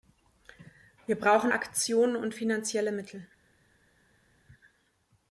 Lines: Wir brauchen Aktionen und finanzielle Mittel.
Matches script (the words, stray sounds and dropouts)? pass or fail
pass